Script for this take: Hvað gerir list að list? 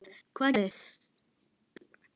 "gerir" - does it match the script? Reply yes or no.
no